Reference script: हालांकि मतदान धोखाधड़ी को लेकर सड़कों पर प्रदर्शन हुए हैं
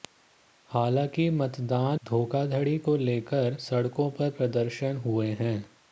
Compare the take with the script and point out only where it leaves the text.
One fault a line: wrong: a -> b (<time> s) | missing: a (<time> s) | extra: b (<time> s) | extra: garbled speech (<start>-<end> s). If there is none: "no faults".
no faults